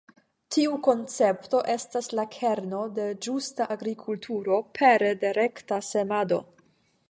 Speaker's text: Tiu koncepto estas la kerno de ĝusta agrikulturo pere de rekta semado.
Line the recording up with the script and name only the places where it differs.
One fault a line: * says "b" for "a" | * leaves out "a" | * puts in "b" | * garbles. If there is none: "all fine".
all fine